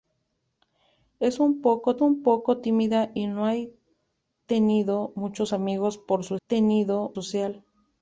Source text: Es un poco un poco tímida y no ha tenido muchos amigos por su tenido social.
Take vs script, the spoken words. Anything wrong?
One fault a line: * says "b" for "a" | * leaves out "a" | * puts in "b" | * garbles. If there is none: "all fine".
all fine